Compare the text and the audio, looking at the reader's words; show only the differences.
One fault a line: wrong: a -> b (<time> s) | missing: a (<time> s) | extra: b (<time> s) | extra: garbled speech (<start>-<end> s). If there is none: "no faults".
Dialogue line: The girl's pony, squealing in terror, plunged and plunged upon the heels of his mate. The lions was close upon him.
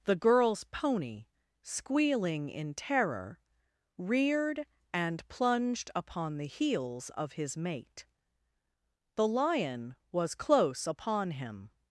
wrong: plunged -> reared (4.0 s)
wrong: lions -> lion (9.3 s)